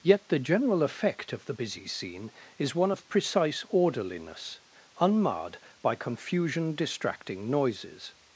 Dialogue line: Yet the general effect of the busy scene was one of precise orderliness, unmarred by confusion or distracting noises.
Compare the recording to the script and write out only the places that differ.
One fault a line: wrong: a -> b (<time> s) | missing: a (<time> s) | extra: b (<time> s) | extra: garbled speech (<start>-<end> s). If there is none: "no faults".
wrong: was -> is (2.6 s)
missing: or (6.7 s)